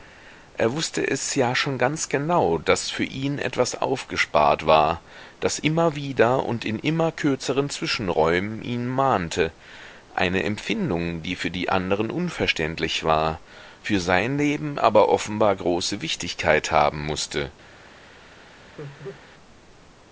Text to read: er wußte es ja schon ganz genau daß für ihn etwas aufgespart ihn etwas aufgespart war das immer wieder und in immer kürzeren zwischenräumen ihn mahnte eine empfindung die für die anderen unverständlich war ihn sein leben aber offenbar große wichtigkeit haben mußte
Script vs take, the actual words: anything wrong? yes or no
yes